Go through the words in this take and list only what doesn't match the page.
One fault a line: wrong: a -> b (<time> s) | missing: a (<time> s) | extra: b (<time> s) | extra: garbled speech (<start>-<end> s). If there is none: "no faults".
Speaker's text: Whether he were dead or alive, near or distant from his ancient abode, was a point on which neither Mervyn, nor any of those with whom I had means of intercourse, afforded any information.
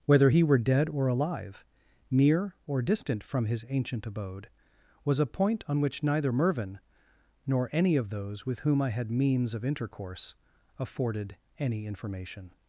no faults